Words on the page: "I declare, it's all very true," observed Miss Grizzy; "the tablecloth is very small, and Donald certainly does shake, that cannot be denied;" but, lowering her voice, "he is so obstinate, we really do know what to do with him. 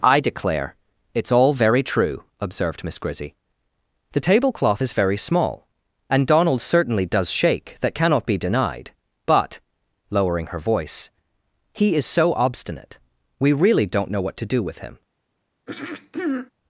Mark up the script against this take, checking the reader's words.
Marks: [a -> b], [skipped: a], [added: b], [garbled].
"I declare, it's all very true," observed Miss Grizzy; "the tablecloth is very small, and Donald certainly does shake, that cannot be denied;" but, lowering her voice, "he is so obstinate, we really [do -> don't] know what to do with him.